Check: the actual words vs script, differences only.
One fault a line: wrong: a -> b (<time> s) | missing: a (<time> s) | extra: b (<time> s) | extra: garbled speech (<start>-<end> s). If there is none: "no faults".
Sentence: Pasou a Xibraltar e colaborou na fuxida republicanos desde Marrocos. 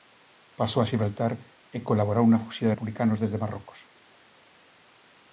no faults